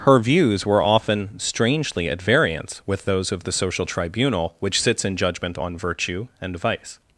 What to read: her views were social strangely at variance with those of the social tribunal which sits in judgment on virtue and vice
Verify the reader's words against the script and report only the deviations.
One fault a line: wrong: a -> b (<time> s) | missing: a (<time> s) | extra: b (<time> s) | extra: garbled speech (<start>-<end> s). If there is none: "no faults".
wrong: social -> often (0.8 s)